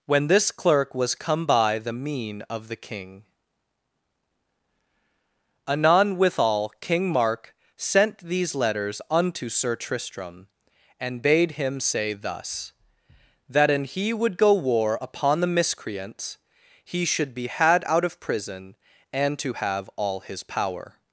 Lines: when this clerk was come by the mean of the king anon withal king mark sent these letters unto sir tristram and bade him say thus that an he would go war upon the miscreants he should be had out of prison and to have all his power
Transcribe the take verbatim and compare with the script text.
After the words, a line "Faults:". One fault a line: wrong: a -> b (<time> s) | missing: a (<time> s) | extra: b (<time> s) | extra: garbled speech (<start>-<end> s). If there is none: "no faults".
when this clerk was come by the mean of the king anon withal king mark sent these letters unto sir tristram and bade him say thus that an he would go war upon the miscreants he should be had out of prison and to have all his power
Faults:
no faults